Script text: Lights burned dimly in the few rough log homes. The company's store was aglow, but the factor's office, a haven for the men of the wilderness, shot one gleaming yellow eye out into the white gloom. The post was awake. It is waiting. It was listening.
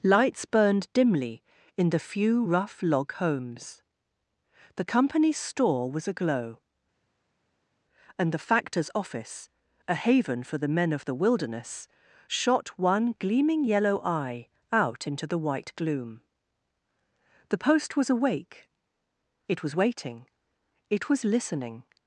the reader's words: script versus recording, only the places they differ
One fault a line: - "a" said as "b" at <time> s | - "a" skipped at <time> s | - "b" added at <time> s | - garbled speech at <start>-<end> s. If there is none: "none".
- "but" said as "and" at 8.2 s
- "is" said as "was" at 19.6 s